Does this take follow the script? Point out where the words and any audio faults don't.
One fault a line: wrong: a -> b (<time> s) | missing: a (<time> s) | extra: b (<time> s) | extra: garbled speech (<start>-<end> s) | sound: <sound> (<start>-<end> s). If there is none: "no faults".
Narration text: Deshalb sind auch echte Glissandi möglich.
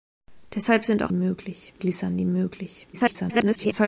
wrong: echte -> möglich (1.1 s)
extra: garbled speech (2.9-3.9 s)